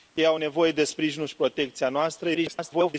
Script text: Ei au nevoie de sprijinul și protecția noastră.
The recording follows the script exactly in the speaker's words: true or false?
false